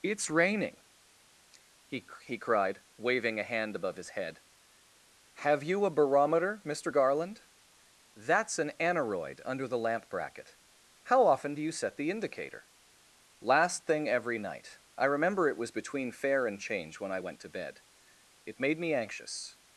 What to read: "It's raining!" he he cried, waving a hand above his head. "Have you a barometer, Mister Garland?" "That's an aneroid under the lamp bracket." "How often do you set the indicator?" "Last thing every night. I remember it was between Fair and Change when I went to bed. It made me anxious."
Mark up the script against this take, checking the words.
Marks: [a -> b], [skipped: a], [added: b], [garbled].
"It's raining!" he he cried, waving a hand above his head. "Have you a barometer, Mister Garland?" "That's an aneroid under the lamp bracket." "How often do you set the indicator?" "Last thing every night. I remember it was between Fair and Change when I went to bed. It made me anxious."